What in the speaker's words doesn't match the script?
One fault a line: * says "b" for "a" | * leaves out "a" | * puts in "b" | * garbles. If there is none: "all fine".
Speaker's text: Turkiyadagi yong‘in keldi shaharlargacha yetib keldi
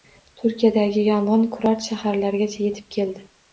* says "kurort" for "keldi"